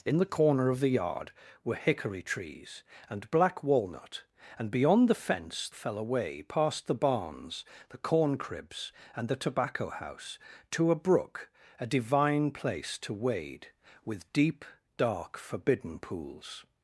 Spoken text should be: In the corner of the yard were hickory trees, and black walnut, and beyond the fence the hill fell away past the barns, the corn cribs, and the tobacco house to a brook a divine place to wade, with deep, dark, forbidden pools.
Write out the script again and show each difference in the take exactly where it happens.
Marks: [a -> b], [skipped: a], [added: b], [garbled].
In the corner of the yard were hickory trees, and black walnut, and beyond the fence [skipped: the hill] fell away past the barns, the corn cribs, and the tobacco house to a brook a divine place to wade, with deep, dark, forbidden pools.